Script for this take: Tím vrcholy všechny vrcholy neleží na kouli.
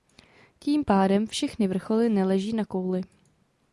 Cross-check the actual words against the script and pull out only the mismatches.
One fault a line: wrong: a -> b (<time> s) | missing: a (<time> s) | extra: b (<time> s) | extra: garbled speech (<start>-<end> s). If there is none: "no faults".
wrong: vrcholy -> pádem (0.8 s)